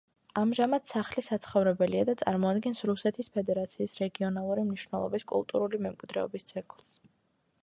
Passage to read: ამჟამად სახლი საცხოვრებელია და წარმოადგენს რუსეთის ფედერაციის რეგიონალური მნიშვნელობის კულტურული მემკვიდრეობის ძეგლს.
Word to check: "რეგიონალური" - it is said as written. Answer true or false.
true